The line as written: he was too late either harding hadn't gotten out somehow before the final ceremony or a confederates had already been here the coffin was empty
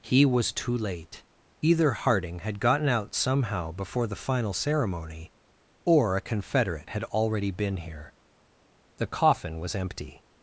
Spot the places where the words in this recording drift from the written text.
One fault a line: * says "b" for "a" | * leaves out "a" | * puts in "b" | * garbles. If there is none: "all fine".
* says "had" for "hadn't"
* says "confederate" for "confederates"